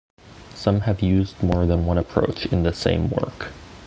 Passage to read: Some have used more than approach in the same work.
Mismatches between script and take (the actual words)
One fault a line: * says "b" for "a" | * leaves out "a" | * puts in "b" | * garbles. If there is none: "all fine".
* puts in "one"